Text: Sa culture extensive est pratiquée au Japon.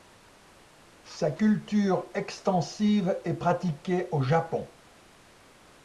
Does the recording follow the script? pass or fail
pass